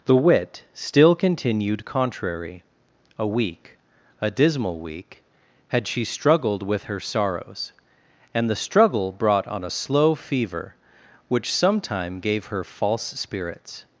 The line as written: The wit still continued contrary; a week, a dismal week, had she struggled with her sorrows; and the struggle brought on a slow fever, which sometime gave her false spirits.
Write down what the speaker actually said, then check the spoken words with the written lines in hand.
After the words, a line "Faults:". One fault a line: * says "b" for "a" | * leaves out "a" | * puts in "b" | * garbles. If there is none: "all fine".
The wit still continued contrary; a week, a dismal week, had she struggled with her sorrows; and the struggle brought on a slow fever, which sometime gave her false spirits.
Faults:
all fine